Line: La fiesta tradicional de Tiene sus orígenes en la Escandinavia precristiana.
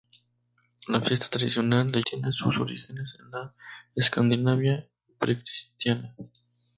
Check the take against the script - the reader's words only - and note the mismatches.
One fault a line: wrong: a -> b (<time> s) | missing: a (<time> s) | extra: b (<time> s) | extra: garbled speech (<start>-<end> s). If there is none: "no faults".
no faults